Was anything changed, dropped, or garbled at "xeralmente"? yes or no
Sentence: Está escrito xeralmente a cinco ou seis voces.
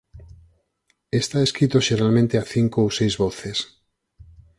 no